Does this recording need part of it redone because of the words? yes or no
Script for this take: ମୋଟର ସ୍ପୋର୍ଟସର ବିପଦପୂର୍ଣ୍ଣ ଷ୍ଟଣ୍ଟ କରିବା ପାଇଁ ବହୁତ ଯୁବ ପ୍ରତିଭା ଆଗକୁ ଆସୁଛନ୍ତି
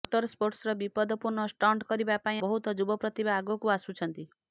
no